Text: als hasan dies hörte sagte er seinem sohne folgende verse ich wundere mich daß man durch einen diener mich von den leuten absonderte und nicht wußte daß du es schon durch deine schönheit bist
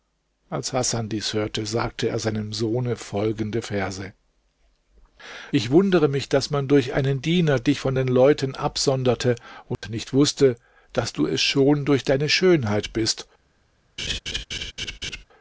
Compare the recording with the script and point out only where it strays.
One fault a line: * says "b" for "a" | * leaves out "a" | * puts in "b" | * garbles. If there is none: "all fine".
* says "dich" for "mich"